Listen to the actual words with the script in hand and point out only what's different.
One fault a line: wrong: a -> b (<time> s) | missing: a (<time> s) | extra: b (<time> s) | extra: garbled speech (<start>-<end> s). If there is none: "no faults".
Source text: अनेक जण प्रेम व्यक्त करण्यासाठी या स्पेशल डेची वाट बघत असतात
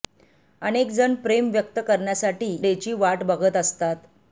missing: या स्पेशल (2.5 s)